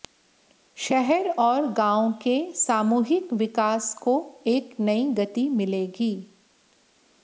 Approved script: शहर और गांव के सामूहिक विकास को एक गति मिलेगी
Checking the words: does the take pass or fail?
fail